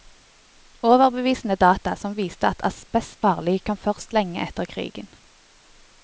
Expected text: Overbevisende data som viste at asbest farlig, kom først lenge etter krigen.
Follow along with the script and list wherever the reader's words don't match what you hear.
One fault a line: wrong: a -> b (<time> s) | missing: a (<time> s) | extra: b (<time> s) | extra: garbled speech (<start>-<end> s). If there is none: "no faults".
no faults